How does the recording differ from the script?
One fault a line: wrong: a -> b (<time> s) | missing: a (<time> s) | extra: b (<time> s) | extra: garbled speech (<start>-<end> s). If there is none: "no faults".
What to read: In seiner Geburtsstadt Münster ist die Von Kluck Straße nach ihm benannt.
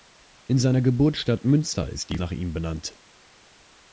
missing: Von Kluck Straße (2.2 s)